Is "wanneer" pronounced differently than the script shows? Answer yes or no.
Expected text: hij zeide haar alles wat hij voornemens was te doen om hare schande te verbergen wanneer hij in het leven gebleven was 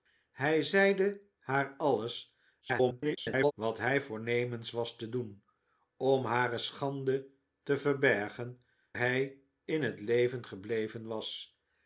yes